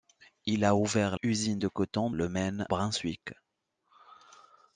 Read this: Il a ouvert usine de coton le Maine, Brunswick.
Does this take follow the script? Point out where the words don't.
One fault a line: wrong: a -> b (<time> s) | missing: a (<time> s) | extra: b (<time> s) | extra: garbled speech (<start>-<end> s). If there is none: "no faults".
no faults